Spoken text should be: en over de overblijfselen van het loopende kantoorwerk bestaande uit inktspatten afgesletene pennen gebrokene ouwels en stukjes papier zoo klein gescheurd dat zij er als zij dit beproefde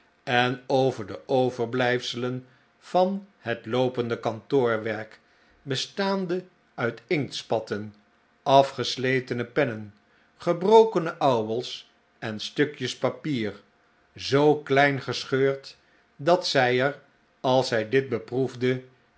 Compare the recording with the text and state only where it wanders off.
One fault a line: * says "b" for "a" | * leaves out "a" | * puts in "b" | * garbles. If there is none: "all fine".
all fine